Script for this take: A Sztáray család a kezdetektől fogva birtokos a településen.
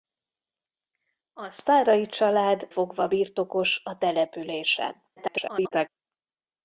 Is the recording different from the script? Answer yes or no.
yes